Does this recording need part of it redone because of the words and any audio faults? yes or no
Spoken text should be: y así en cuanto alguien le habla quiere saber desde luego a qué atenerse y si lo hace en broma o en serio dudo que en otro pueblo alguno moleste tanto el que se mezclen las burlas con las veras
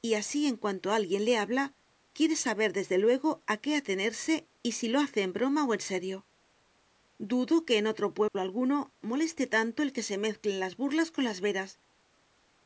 yes